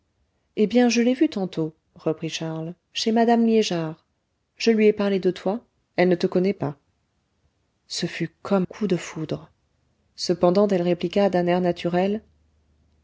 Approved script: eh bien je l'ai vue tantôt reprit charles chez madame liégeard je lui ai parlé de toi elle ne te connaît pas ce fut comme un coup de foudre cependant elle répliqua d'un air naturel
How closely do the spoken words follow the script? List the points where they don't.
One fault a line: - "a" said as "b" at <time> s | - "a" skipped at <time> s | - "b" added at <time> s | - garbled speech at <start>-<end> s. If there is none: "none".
- "un" skipped at 8.7 s